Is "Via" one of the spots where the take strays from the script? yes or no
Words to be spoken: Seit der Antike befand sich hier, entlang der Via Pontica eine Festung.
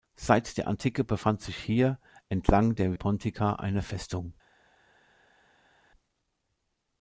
yes